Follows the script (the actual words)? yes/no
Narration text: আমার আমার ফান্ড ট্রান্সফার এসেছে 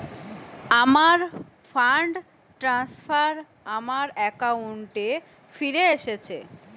no